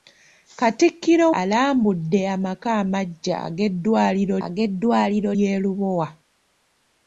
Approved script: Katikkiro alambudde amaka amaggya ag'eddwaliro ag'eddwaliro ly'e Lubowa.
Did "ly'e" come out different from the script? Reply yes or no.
no